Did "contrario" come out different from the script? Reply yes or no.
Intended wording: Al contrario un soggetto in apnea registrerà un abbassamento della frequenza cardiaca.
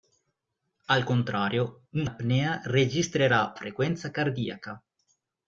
no